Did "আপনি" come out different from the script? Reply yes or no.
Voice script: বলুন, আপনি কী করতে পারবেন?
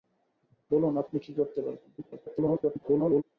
no